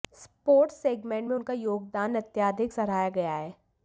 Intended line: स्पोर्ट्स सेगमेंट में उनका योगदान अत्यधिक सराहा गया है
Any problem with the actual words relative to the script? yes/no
no